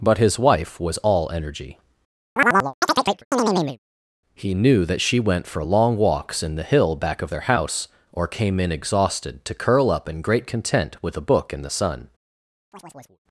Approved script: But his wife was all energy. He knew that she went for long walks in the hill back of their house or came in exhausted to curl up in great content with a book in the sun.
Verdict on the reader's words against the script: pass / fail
pass